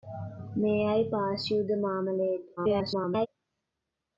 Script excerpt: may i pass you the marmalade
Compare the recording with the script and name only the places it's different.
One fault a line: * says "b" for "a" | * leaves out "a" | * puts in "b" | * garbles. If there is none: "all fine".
* garbles